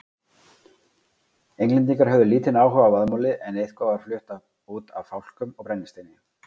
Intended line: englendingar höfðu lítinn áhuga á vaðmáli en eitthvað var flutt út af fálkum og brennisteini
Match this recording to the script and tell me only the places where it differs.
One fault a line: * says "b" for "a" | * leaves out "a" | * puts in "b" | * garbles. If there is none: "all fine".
all fine